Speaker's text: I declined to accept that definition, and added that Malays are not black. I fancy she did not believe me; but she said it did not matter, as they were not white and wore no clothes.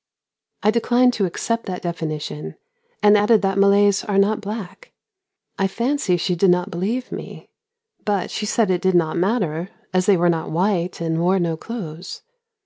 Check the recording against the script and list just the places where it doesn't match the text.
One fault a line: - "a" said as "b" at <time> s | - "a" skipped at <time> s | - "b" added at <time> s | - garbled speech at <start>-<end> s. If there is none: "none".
none